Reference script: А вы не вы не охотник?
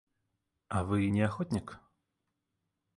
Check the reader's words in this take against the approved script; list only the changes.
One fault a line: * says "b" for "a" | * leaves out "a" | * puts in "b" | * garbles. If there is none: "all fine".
* leaves out "вы не"